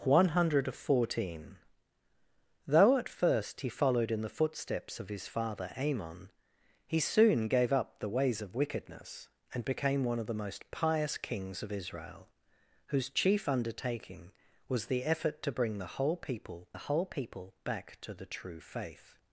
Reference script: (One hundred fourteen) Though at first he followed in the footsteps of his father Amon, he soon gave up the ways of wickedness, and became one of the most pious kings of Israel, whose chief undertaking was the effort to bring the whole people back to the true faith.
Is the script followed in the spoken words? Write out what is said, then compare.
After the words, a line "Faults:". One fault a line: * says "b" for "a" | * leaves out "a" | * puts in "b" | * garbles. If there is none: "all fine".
(One hundred fourteen) Though at first he followed in the footsteps of his father Amon, he soon gave up the ways of wickedness, and became one of the most pious kings of Israel, whose chief undertaking was the effort to bring the whole people the whole people back to the true faith.
Faults:
* puts in "the whole people"